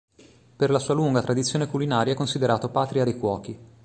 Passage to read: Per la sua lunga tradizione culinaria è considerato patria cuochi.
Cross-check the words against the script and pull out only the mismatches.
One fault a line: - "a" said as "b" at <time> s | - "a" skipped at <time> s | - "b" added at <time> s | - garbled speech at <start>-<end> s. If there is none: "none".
- "dei" added at 3.0 s